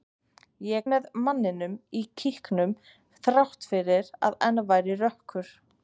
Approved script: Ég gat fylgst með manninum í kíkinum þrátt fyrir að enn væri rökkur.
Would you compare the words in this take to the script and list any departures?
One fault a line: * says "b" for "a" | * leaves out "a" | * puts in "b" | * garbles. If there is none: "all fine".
* leaves out "gat fylgst"